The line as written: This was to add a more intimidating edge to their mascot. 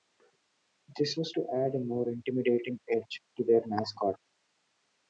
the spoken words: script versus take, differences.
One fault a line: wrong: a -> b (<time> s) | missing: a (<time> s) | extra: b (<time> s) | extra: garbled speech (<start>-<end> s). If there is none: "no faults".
no faults